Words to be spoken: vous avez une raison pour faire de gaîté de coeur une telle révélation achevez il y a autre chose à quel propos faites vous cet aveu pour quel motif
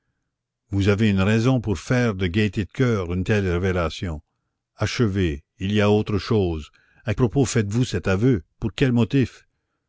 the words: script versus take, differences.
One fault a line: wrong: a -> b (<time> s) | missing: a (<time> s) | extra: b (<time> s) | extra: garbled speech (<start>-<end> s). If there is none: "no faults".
missing: quel (7.1 s)